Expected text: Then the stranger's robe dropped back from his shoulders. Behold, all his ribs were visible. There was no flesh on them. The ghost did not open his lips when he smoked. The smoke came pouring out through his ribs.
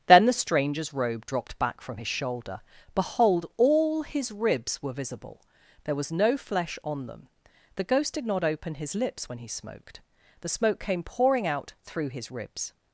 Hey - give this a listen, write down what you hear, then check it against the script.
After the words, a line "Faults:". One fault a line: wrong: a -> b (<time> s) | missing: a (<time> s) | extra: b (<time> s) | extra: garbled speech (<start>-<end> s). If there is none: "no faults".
Then the stranger's robe dropped back from his shoulder. Behold, all his ribs were visible. There was no flesh on them. The ghost did not open his lips when he smoked. The smoke came pouring out through his ribs.
Faults:
wrong: shoulders -> shoulder (2.1 s)